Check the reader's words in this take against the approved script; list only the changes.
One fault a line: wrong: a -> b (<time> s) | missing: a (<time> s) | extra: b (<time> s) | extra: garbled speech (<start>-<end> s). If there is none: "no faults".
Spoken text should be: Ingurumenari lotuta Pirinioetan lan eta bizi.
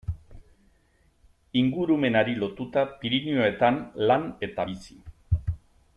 no faults